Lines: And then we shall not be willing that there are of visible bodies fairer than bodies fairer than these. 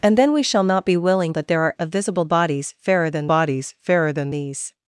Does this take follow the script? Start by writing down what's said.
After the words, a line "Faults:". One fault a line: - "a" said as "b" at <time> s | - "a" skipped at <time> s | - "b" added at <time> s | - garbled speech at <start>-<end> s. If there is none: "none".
And then we shall not be willing that there are of visible bodies fairer than bodies fairer than these.
Faults:
none